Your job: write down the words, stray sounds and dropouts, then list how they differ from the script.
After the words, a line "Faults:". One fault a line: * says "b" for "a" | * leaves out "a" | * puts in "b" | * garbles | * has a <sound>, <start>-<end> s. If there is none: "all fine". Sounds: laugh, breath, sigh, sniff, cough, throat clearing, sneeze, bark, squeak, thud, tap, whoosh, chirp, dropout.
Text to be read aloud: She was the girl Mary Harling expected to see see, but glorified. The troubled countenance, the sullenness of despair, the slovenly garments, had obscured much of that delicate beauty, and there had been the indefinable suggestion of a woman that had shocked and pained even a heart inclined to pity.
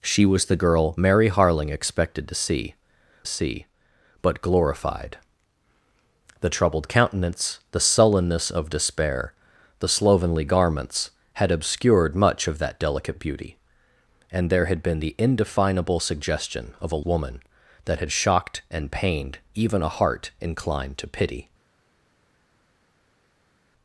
She was the girl Mary Harling expected to see see, but glorified. The troubled countenance, the sullenness of despair, the slovenly garments, had obscured much of that delicate beauty, and there had been the indefinable suggestion of a woman that had shocked and pained even a heart inclined to pity.
Faults:
all fine